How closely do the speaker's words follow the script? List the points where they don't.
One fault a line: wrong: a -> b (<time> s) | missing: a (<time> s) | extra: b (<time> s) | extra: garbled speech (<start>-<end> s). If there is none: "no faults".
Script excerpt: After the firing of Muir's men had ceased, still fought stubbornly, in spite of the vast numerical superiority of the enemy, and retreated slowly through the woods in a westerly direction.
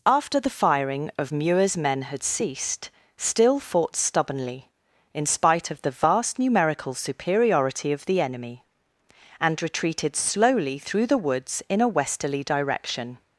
no faults